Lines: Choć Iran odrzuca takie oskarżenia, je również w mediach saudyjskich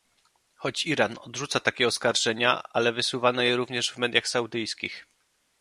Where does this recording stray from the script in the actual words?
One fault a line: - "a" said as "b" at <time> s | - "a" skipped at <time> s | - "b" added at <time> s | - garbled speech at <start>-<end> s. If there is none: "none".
- "ale wysuwano" added at 2.7 s